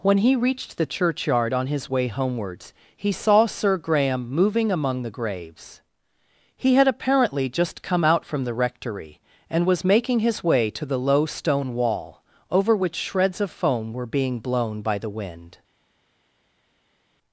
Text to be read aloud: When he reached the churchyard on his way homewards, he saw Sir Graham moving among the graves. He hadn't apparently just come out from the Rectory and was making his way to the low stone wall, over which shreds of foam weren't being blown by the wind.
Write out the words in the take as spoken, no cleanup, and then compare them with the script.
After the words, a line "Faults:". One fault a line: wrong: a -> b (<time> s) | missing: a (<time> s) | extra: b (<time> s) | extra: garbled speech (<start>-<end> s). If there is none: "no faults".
When he reached the churchyard on his way homewards, he saw Sir Graham moving among the graves. He had apparently just come out from the Rectory and was making his way to the low stone wall, over which shreds of foam were being blown by the wind.
Faults:
wrong: hadn't -> had (6.8 s)
wrong: weren't -> were (13.9 s)